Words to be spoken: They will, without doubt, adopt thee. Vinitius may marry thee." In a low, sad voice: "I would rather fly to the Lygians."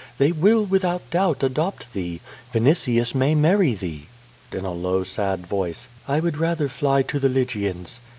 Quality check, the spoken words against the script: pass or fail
pass